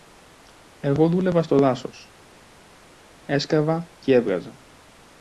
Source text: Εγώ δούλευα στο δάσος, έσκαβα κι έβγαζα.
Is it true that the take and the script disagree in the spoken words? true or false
false